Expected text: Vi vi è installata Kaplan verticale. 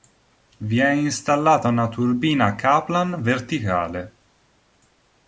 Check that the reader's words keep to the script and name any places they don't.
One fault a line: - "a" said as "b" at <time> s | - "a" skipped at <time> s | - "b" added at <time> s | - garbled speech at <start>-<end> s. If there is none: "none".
- "vi" skipped at 0.8 s
- "una turbina" added at 1.7 s